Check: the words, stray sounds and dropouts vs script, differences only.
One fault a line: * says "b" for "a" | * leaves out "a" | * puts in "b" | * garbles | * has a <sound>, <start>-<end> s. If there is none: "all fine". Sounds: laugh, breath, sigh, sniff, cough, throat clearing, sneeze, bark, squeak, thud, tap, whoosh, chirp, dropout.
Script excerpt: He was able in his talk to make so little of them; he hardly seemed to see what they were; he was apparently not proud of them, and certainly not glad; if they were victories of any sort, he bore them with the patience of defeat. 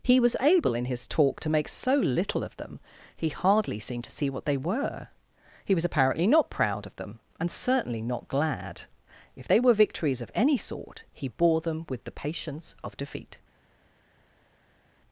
all fine